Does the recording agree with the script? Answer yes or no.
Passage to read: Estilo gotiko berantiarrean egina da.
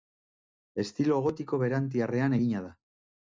yes